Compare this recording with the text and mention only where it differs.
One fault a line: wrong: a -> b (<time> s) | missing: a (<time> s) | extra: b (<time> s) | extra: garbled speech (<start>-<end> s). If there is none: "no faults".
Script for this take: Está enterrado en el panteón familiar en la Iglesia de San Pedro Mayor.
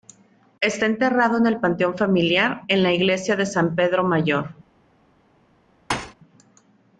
no faults